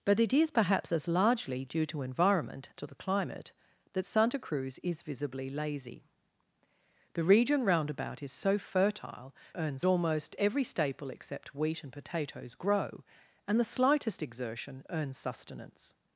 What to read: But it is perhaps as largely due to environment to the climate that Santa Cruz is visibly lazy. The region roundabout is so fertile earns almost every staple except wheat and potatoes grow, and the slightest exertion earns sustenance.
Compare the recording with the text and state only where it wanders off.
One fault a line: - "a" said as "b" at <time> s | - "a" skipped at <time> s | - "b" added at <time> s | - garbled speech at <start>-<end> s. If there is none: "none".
none